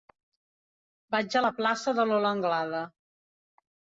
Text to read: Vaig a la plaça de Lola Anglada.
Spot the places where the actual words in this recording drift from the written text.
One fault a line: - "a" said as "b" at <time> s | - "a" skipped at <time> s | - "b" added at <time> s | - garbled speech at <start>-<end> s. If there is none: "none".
none